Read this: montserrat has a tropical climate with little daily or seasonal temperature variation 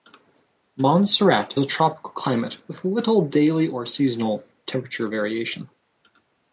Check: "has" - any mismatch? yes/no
yes